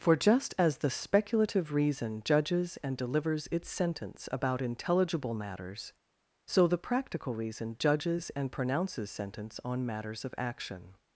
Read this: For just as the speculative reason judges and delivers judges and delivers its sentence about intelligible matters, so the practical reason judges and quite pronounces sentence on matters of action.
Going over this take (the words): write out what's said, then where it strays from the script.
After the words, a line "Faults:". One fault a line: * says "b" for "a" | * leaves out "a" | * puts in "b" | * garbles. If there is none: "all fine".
For just as the speculative reason judges and delivers its sentence about intelligible matters, so the practical reason judges and pronounces sentence on matters of action.
Faults:
* leaves out "judges and delivers"
* leaves out "quite"